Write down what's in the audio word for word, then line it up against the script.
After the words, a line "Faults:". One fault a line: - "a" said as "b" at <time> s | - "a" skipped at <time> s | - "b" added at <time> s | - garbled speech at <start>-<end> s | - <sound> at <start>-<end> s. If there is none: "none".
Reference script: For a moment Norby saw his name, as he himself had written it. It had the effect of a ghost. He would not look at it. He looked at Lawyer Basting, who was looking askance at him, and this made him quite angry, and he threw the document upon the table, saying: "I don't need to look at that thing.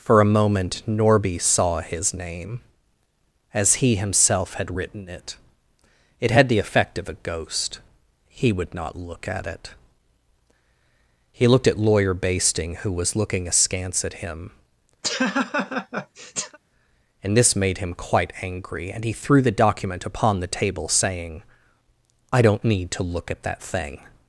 For a moment Norby saw his name, as he himself had written it. It had the effect of a ghost. He would not look at it. He looked at Lawyer Basting, who was looking askance at him, and this made him quite angry, and he threw the document upon the table, saying: "I don't need to look at that thing.
Faults:
- laugh at 15.0-16.6 s